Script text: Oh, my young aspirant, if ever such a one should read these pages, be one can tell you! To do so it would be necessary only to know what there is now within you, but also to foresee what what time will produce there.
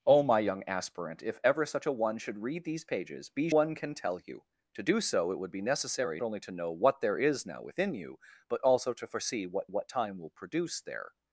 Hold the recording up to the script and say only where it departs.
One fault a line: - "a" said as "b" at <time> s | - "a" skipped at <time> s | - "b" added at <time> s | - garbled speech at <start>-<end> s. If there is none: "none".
none